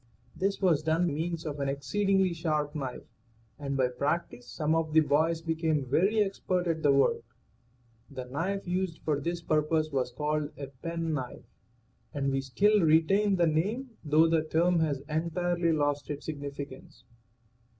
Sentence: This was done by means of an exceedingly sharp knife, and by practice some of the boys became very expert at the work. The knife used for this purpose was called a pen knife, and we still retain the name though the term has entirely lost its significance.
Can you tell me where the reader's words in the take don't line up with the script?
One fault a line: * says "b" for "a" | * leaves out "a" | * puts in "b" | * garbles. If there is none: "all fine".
* leaves out "by"